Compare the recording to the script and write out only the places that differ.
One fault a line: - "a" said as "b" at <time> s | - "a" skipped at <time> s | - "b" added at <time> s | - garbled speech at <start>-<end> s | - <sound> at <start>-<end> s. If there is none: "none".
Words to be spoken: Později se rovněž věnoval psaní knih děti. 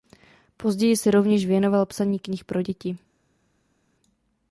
- "pro" added at 2.5 s